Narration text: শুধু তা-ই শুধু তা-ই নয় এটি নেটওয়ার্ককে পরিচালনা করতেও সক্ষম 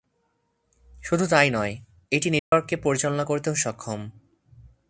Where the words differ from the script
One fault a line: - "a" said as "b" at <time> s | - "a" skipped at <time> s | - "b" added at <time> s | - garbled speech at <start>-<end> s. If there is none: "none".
- "শুধু তা-ই" skipped at 1.5 s